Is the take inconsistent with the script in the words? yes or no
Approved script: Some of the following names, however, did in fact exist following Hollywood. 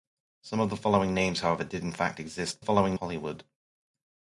no